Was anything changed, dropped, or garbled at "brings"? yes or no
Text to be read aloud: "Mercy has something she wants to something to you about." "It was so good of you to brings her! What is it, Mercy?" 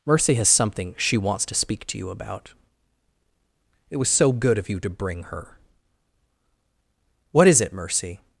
yes